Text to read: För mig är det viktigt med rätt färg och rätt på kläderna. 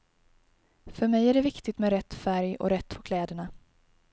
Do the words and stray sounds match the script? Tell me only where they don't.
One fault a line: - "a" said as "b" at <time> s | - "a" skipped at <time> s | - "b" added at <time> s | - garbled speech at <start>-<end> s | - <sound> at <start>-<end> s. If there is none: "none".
none